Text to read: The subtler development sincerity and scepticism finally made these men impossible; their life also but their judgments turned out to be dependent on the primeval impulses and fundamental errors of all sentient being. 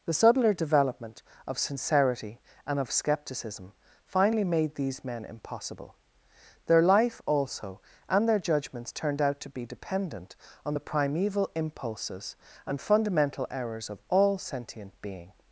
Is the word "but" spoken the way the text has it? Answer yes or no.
no